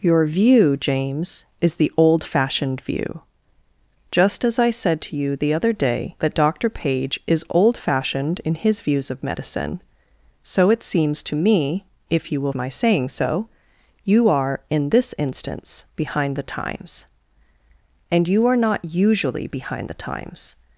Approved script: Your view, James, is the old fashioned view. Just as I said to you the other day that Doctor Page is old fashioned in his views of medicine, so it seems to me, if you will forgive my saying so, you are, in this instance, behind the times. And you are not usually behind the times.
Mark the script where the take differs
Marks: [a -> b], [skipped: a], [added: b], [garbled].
Your view, James, is the old fashioned view. Just as I said to you the other day that Doctor Page is old fashioned in his views of medicine, so it seems to me, if you will [skipped: forgive] my saying so, you are, in this instance, behind the times. And you are not usually behind the times.